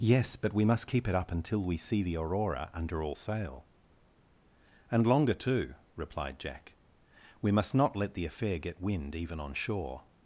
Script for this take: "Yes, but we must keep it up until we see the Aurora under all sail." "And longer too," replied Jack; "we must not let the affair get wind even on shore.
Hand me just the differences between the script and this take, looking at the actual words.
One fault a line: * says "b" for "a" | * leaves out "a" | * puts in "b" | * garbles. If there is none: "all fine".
all fine